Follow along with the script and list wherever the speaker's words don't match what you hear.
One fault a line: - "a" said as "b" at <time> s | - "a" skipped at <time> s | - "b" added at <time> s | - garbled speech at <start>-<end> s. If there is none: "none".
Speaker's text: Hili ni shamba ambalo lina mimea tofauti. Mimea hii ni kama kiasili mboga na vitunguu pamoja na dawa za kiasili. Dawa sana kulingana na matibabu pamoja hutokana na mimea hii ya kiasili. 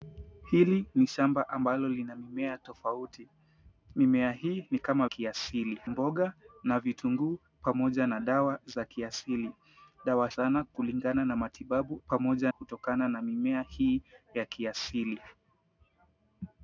none